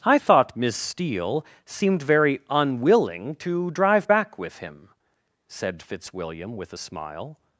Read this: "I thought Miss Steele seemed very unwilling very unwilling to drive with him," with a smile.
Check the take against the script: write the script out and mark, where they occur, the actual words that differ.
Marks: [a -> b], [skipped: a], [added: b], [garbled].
"I thought Miss Steele seemed very unwilling [skipped: very unwilling] to drive [added: back] with him," [added: said Fitzwilliam] with a smile.